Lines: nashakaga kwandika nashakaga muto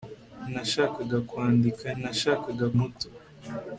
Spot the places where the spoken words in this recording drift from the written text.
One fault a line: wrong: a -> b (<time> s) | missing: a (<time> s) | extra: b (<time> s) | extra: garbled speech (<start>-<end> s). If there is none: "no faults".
no faults